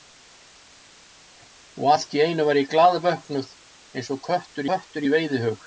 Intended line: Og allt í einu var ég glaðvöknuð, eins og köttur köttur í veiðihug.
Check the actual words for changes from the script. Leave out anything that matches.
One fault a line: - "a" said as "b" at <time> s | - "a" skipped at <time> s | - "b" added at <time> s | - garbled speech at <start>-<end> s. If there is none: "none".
none